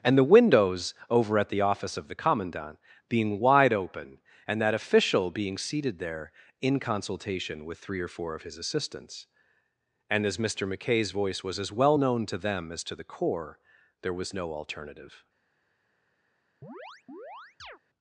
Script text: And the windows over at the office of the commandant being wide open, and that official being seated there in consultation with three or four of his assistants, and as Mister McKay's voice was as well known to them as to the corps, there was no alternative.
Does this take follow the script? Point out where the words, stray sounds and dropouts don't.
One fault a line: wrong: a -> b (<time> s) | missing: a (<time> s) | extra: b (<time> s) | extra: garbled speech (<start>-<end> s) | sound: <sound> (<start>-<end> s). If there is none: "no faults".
sound: chirp (16.6-17.8 s)